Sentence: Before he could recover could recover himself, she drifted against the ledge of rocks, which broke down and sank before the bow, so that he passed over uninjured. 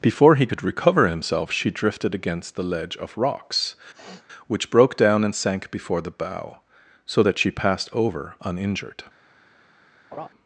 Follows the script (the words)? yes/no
no